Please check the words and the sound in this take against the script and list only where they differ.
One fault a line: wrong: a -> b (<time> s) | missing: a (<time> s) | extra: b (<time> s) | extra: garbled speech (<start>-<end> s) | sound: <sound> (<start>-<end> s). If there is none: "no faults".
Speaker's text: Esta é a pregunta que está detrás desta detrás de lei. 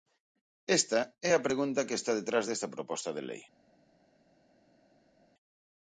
wrong: detrás -> proposta (2.7 s)